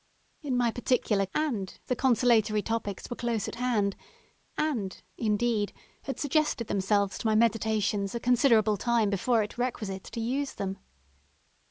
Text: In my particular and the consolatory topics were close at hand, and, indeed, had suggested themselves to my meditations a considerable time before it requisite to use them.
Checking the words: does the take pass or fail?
pass